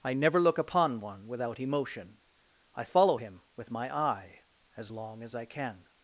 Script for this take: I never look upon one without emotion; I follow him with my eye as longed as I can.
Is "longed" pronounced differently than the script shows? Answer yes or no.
yes